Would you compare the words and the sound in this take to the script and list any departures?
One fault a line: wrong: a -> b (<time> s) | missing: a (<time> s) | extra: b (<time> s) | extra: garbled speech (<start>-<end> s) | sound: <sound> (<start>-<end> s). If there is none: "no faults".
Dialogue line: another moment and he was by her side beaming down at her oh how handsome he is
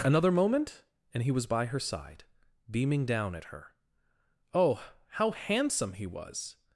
wrong: is -> was (6.1 s)